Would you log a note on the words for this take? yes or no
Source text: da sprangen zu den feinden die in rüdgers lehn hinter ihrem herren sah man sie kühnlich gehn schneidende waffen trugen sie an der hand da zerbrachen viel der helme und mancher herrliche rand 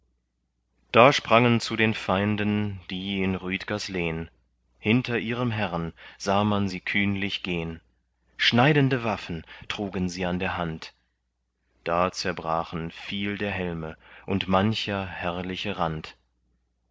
no